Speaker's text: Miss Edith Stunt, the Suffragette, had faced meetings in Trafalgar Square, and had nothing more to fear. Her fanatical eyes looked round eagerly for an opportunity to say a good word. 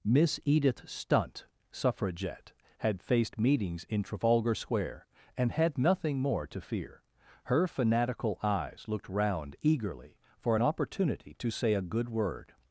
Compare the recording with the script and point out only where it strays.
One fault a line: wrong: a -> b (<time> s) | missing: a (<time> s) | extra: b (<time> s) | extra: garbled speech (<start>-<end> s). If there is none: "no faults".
missing: the (1.4 s)